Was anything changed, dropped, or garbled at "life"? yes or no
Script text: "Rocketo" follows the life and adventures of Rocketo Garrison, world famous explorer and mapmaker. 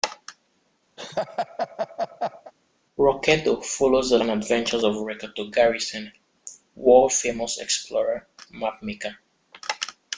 yes